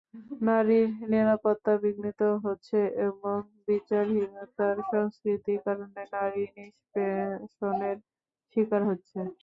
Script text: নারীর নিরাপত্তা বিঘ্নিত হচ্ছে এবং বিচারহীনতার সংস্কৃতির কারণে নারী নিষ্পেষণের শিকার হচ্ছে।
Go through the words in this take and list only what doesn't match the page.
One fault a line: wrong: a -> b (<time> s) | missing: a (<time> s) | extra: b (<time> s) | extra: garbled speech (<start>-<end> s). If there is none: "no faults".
no faults